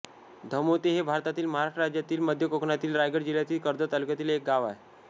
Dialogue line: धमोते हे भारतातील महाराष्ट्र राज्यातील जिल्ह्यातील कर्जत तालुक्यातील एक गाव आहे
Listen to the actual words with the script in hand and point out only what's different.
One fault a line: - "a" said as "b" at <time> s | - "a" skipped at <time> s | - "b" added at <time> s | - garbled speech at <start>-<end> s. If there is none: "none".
- "मध्य कोकणातील रायगड" added at 2.2 s